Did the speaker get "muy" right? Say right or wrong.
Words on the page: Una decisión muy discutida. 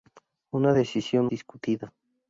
wrong